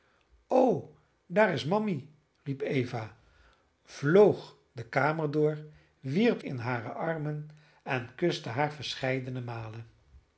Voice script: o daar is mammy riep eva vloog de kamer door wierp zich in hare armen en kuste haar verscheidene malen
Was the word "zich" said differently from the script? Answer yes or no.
yes